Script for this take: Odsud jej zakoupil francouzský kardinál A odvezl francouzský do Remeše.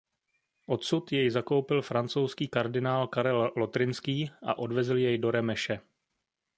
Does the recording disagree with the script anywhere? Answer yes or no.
yes